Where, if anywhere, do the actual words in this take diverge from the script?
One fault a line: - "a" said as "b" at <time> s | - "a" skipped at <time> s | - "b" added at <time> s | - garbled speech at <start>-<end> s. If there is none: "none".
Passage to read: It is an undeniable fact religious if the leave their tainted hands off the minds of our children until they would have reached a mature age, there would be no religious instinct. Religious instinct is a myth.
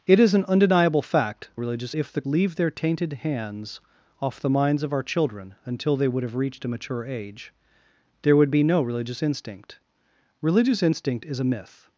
none